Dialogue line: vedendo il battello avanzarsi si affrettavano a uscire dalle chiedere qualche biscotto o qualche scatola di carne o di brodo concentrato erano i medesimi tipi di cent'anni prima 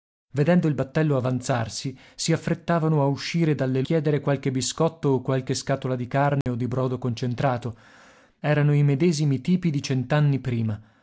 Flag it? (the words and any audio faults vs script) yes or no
yes